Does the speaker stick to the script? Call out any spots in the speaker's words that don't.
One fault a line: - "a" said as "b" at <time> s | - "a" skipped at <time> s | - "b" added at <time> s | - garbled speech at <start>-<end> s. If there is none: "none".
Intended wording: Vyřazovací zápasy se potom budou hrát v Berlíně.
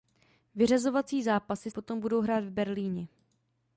- "se" skipped at 1.7 s